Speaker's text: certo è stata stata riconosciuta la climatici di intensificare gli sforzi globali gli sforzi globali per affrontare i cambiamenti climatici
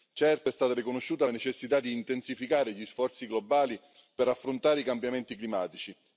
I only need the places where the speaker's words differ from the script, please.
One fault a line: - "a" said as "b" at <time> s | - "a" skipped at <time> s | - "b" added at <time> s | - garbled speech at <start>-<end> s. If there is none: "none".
- "stata" skipped at 0.7 s
- "climatici" said as "necessità" at 1.3 s
- "gli sforzi globali" skipped at 3.8 s